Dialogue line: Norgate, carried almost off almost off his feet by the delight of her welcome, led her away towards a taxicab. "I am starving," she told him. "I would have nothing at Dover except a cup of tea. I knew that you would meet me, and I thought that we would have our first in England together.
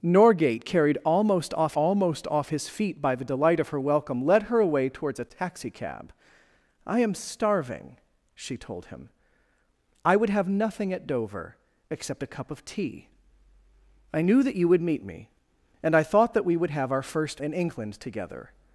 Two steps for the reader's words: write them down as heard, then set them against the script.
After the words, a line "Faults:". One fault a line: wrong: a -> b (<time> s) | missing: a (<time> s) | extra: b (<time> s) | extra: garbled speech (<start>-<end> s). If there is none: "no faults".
Norgate, carried almost off almost off his feet by the delight of her welcome, led her away towards a taxicab. "I am starving," she told him. "I would have nothing at Dover except a cup of tea. I knew that you would meet me, and I thought that we would have our first in England together.
Faults:
no faults